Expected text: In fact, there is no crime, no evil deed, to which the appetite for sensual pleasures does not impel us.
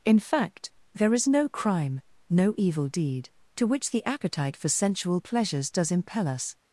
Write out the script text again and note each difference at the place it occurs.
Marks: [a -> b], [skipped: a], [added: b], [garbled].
In fact, there is no crime, no evil deed, to which the appetite for sensual pleasures does [skipped: not] impel us.